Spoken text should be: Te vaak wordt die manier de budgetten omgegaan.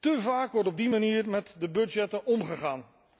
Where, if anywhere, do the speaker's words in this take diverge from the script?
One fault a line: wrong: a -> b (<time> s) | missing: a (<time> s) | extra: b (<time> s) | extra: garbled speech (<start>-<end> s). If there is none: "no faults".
extra: op (0.7 s)
extra: met (1.3 s)